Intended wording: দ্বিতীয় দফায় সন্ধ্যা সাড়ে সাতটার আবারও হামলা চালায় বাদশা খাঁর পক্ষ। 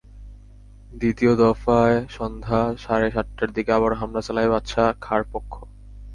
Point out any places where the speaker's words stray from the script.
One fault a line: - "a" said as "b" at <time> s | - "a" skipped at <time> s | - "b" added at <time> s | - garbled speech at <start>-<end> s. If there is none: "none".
- "দিকে" added at 3.5 s